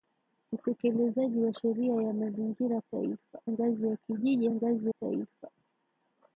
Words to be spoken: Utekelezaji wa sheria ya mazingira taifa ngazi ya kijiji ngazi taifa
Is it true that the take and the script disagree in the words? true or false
false